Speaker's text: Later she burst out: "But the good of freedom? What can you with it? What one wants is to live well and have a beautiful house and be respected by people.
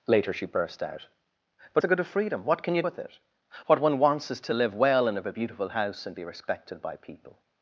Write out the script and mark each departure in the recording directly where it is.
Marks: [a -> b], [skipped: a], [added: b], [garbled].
Later she burst out: "But the good of freedom? What can you with it? What one wants is to live well and have a beautiful house and be respected by people.